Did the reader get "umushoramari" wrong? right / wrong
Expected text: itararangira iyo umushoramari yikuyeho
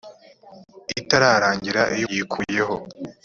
wrong